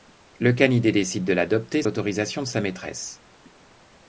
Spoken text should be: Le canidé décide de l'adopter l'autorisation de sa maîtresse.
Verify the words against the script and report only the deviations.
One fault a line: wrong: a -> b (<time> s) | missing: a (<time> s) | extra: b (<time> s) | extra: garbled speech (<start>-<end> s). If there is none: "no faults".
no faults